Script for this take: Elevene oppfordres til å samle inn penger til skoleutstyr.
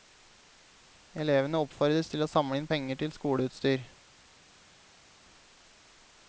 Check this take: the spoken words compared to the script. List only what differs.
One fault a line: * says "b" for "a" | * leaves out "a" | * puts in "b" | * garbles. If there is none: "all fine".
all fine